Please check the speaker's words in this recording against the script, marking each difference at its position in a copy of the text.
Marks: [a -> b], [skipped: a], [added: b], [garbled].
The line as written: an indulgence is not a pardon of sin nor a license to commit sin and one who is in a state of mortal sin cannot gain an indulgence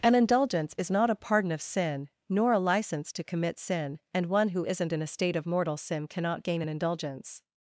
an indulgence is not a pardon of sin nor a license to commit sin and one who [is -> isn't] in a state of mortal sin cannot gain an indulgence